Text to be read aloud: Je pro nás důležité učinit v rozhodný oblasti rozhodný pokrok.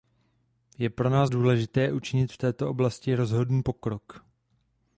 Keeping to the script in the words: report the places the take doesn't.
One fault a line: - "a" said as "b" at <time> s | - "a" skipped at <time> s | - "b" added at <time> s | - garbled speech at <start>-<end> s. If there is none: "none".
- "rozhodný" said as "této" at 2.4 s